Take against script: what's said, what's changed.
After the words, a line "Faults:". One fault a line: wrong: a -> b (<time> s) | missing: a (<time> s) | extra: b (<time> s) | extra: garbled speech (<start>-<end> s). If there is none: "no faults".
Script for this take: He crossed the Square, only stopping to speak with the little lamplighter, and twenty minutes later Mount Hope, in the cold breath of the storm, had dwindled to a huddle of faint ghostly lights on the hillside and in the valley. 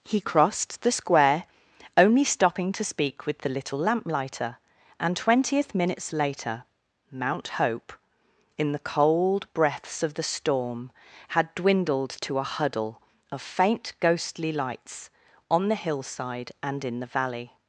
He crossed the Square, only stopping to speak with the little lamplighter, and twentieth minutes later Mount Hope, in the cold breaths of the storm, had dwindled to a huddle of faint ghostly lights on the hillside and in the valley.
Faults:
wrong: twenty -> twentieth (5.2 s)
wrong: breath -> breaths (9.5 s)